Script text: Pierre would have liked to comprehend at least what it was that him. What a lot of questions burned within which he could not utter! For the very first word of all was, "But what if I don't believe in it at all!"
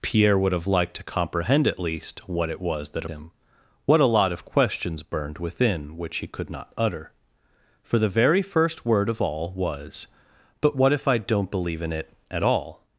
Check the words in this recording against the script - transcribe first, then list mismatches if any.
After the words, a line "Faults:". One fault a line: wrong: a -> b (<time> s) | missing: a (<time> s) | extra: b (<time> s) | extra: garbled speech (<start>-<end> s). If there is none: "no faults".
Pierre would have liked to comprehend at least what it was that him. What a lot of questions burned within which he could not utter! For the very first word of all was, "But what if I don't believe in it at all!"
Faults:
no faults